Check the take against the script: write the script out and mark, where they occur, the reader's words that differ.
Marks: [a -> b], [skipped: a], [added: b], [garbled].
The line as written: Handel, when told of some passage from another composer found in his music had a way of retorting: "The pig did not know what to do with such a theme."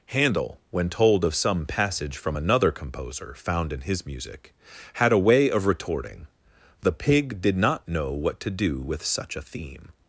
Handel, when told of some passage from another composer found in his music had a way of retorting: "The pig did not know what to do with such a theme."